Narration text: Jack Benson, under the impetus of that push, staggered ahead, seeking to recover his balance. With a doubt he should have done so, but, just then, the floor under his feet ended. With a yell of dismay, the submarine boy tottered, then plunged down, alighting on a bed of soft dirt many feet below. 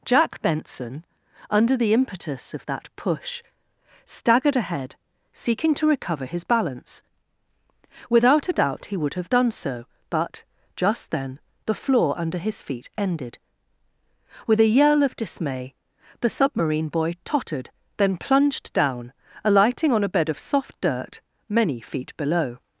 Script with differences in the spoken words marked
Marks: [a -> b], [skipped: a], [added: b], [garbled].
Jack Benson, under the impetus of that push, staggered ahead, seeking to recover his balance. [With -> Without] a doubt he [should -> would] have done so, but, just then, the floor under his feet ended. With a yell of dismay, the submarine boy tottered, then plunged down, alighting on a bed of soft dirt many feet below.